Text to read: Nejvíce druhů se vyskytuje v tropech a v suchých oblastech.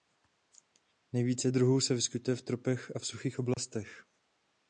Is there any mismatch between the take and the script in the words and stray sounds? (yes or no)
yes